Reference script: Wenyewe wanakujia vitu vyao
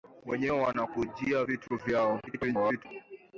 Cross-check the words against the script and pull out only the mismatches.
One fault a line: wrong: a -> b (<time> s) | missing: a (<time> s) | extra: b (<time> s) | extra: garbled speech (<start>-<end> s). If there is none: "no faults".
extra: garbled speech (2.3-2.9 s)